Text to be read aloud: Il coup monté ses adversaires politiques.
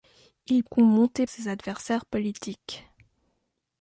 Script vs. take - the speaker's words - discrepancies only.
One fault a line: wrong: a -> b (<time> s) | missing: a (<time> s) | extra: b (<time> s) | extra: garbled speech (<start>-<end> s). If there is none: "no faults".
no faults